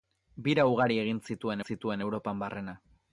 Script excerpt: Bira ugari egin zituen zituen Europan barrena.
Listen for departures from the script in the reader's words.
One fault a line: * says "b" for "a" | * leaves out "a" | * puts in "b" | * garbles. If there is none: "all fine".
all fine